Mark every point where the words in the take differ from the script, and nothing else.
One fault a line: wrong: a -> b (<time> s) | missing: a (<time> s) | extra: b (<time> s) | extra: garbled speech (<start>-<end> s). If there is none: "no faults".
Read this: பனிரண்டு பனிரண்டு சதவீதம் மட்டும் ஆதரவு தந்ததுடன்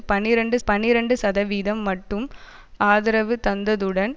no faults